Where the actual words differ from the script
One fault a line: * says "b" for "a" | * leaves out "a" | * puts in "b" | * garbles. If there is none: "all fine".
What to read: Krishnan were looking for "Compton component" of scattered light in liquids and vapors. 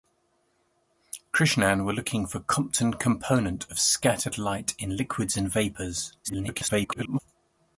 * garbles